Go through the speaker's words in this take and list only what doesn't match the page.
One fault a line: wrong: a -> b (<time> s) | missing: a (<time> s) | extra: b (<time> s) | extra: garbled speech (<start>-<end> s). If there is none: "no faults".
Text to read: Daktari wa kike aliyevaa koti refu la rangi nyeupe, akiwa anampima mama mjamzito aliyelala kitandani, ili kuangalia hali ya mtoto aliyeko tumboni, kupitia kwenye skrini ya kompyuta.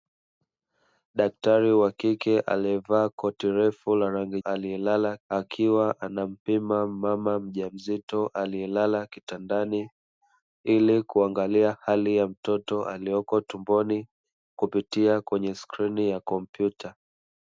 wrong: nyeupe -> aliyelala (4.4 s)